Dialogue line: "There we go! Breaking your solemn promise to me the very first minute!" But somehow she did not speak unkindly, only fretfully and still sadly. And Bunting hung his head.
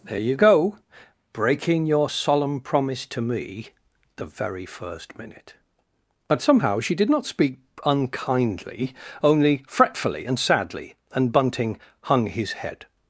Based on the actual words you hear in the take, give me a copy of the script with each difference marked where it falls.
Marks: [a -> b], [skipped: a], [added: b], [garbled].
"There [we -> you] go! Breaking your solemn promise to me the very first minute!" But somehow she did not speak unkindly, only fretfully and [skipped: still] sadly. And Bunting hung his head.